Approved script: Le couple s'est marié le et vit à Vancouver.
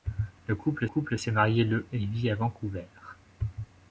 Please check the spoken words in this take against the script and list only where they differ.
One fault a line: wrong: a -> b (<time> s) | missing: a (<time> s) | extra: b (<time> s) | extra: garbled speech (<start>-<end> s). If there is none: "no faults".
extra: couple (0.8 s)